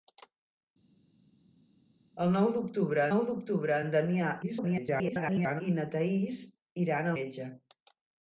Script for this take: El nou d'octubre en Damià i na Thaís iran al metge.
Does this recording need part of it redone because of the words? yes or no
yes